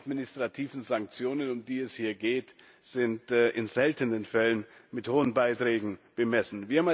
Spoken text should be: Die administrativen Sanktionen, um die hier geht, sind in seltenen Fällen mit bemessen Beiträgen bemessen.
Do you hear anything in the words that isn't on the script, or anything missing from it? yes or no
yes